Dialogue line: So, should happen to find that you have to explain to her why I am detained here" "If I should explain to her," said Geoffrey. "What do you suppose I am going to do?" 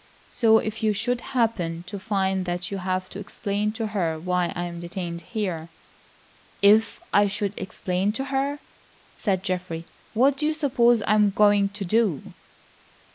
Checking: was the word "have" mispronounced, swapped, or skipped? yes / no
no